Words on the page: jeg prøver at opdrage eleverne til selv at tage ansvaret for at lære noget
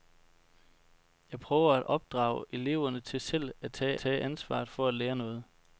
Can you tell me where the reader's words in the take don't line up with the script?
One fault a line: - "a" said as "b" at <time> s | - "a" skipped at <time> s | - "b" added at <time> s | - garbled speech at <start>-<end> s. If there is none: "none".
- "tage" added at 4.0 s